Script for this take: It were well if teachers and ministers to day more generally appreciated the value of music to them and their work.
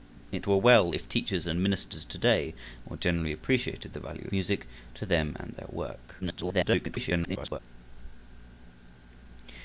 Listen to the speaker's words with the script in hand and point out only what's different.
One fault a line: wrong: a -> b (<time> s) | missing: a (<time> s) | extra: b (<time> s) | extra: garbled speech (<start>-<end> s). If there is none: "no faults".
missing: of (4.3 s)
extra: garbled speech (6.2-7.6 s)